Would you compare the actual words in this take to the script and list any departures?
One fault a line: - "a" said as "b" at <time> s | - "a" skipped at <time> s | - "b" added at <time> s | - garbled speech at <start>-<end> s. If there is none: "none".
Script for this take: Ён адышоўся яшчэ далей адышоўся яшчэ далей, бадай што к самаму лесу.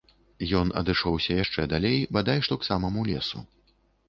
- "адышоўся яшчэ далей" skipped at 2.0 s